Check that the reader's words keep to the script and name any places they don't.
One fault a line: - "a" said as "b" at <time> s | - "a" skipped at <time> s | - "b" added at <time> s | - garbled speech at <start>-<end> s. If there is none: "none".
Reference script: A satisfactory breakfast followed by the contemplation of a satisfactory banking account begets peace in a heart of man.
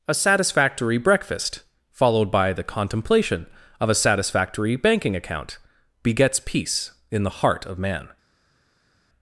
- "a" said as "the" at 7.2 s